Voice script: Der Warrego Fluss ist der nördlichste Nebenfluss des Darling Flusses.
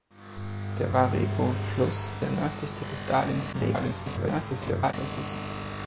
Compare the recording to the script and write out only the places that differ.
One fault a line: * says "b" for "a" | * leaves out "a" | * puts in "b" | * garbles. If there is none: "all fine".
* leaves out "ist"
* leaves out "Nebenfluss"
* garbles